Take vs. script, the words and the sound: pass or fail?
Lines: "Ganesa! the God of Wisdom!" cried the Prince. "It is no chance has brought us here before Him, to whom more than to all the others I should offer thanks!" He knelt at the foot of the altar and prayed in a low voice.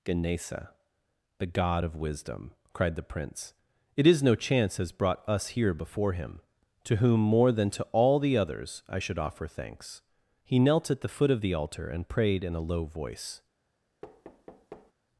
fail